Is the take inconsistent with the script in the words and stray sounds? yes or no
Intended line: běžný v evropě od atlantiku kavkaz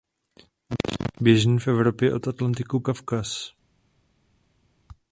no